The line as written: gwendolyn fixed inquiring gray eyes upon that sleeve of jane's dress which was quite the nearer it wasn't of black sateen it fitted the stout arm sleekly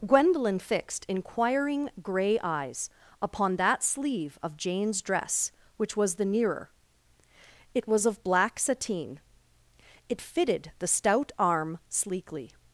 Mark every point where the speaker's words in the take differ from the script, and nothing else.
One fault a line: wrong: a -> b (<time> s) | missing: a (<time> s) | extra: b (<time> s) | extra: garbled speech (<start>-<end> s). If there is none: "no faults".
missing: quite (6.2 s)
wrong: wasn't -> was (7.9 s)